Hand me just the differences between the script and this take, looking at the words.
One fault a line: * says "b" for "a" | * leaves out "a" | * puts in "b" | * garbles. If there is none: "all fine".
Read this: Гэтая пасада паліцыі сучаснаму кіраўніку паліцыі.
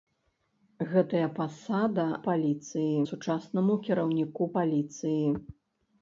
all fine